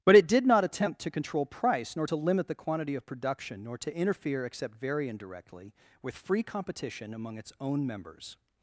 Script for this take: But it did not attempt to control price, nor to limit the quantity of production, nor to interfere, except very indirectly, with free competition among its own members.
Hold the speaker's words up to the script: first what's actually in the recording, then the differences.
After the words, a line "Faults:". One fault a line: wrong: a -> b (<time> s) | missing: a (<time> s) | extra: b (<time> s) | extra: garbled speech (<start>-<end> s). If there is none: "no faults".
But it did not attempt to control price, nor to limit the quantity of production, nor to interfere, except very indirectly, with free competition among its own members.
Faults:
no faults